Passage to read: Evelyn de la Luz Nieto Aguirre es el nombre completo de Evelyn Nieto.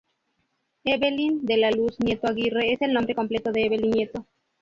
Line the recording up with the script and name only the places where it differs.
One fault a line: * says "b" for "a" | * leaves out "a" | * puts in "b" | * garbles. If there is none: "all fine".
all fine